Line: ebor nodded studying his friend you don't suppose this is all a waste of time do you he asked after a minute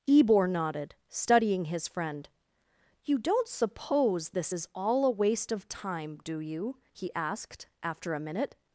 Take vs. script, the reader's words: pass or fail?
pass